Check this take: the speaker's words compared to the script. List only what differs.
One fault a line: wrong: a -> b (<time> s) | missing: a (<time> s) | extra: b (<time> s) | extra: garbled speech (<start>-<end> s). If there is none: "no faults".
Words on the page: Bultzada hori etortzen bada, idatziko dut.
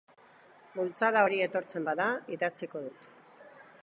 no faults